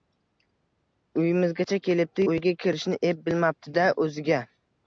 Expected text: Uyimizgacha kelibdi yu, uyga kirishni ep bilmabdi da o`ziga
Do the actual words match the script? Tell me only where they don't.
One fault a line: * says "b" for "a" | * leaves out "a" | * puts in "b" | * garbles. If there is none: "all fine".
* leaves out "yu"